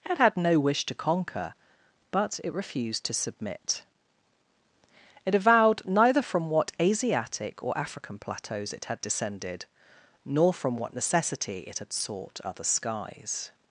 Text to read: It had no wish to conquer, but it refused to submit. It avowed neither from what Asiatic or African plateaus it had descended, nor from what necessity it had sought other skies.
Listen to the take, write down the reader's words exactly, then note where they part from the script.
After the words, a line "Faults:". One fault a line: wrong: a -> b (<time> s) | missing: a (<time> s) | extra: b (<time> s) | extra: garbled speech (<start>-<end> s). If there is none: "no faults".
It had no wish to conquer, but it refused to submit. It avowed neither from what Asiatic or African plateaus it had descended, nor from what necessity it had sought other skies.
Faults:
no faults